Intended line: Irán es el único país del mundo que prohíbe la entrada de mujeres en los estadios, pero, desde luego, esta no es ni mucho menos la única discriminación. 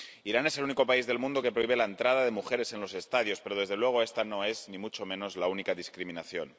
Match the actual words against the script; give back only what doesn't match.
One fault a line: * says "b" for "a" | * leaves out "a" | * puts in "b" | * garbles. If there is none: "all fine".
all fine